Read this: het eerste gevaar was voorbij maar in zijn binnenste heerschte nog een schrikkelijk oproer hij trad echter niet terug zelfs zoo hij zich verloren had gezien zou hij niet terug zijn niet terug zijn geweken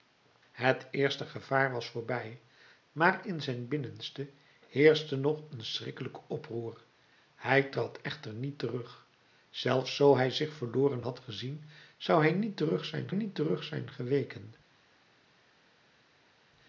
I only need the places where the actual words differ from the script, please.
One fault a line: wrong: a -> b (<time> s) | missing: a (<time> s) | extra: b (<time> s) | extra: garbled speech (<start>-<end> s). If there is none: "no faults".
no faults